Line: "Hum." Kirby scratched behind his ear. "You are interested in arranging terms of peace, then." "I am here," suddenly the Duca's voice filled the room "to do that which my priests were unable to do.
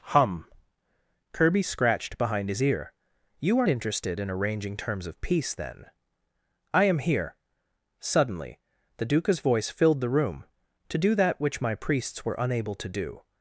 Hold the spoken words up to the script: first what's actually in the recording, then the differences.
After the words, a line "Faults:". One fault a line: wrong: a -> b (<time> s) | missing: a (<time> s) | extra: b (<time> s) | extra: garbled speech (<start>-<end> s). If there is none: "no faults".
"Hum." Kirby scratched behind his ear. "You are interested in arranging terms of peace, then." "I am here," suddenly the Duca's voice filled the room "to do that which my priests were unable to do.
Faults:
no faults